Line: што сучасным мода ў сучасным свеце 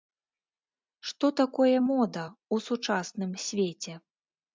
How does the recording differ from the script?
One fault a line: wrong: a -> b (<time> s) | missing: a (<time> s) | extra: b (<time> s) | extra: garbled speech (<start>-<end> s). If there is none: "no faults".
wrong: сучасным -> такое (1.4 s)